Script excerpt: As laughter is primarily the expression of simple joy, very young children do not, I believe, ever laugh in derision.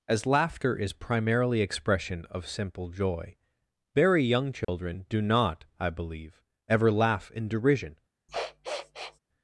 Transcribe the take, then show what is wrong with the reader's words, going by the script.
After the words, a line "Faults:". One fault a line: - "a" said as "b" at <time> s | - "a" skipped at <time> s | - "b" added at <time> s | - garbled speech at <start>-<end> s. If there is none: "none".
As laughter is primarily expression of simple joy, very young children do not, I believe, ever laugh in derision.
Faults:
- "the" skipped at 1.6 s